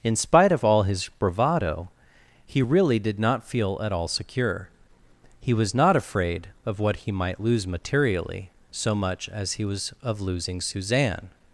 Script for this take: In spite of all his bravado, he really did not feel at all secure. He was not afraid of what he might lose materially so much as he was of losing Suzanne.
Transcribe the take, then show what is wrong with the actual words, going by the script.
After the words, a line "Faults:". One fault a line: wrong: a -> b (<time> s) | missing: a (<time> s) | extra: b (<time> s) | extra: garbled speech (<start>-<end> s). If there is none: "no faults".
In spite of all his bravado, he really did not feel at all secure. He was not afraid of what he might lose materially so much as he was of losing Suzanne.
Faults:
no faults